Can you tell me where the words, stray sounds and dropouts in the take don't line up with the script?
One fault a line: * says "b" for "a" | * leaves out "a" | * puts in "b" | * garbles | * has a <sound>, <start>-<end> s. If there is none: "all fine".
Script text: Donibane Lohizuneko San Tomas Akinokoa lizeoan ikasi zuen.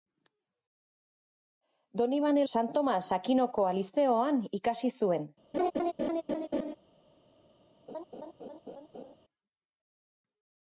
* leaves out "Lohizuneko"
* has a laugh, 5.5-6.8 s
* has a laugh, 7.9-9.2 s